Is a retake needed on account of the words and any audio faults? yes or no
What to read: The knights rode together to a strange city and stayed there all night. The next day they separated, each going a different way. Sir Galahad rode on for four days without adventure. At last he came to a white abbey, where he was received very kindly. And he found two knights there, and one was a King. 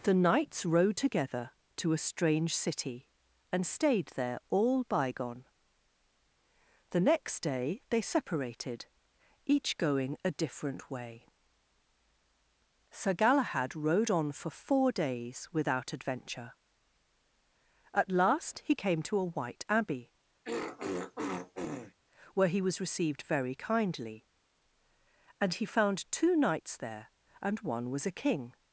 yes